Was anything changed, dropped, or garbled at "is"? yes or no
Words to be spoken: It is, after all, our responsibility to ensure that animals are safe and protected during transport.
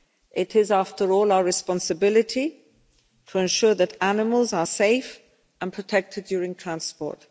no